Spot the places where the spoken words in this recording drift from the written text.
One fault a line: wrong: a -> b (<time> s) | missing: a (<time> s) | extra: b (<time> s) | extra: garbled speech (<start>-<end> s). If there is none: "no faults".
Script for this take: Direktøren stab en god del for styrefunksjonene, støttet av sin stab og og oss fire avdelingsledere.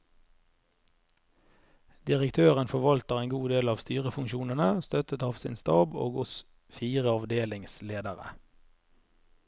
wrong: stab -> forvalter (2.7 s)
wrong: for -> av (3.7 s)
missing: og (6.2 s)